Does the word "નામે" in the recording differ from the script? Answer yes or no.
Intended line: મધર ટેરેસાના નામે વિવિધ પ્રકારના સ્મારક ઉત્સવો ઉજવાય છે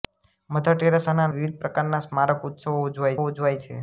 yes